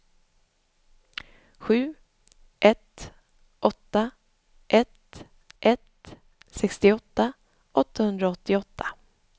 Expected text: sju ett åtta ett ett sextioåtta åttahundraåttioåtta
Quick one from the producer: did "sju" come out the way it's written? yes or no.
yes